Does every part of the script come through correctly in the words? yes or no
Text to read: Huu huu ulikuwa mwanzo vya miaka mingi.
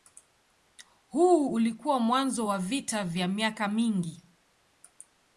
no